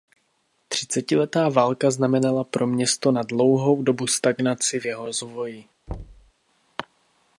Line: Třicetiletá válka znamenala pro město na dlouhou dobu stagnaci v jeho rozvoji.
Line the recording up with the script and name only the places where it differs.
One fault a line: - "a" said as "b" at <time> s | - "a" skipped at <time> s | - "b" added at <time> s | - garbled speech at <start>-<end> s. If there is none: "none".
none